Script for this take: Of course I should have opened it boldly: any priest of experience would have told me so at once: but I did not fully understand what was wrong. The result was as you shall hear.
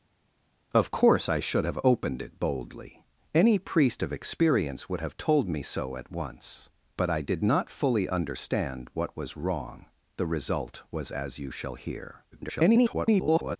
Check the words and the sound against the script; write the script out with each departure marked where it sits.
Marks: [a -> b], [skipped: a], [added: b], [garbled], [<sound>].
Of course I should have opened it boldly: any priest of experience would have told me so at once: but I did not fully understand what was wrong. The result was as you shall hear. [garbled]